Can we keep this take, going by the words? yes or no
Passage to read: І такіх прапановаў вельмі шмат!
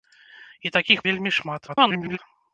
no